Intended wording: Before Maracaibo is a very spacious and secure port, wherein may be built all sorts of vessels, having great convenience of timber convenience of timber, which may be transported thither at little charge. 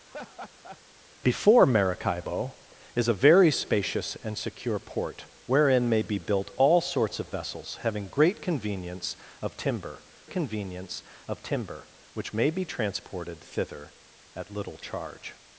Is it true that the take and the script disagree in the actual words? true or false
false